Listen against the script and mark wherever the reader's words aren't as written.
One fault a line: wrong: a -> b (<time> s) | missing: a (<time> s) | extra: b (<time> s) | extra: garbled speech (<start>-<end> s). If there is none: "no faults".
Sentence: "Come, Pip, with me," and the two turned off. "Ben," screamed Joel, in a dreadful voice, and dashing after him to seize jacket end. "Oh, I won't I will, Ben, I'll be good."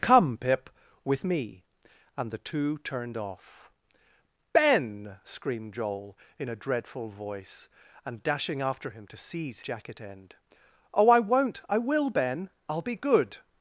no faults